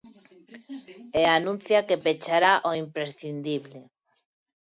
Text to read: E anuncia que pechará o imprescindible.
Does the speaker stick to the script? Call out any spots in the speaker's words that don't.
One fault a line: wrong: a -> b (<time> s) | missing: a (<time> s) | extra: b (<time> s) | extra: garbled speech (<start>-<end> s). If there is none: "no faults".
no faults